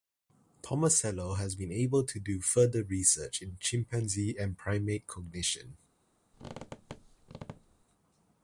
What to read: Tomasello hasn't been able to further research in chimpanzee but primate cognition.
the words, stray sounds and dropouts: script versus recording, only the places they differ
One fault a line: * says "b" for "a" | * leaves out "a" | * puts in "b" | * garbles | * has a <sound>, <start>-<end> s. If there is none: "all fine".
* says "has" for "hasn't"
* puts in "do"
* says "and" for "but"
* has a squeak, 6.3-7.8 s